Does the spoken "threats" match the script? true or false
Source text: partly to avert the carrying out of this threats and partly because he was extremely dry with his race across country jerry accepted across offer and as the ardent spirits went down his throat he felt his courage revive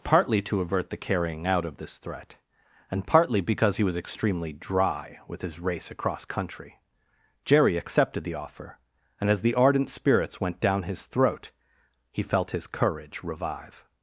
false